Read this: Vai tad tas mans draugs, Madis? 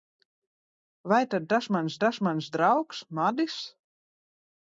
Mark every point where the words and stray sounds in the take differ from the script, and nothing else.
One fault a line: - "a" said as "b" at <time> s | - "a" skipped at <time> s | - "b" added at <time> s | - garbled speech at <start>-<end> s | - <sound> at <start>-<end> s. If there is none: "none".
- "tas mans" added at 2.0 s